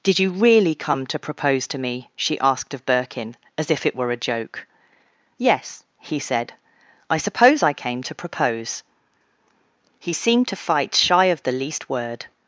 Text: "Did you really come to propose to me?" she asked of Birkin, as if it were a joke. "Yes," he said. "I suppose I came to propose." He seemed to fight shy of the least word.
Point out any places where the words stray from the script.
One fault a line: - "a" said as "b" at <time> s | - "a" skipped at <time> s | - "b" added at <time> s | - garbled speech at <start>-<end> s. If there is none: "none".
none